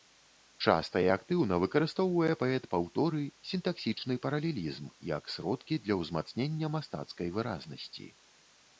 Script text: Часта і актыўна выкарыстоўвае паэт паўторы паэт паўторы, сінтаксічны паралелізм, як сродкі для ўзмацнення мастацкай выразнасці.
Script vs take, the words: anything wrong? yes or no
yes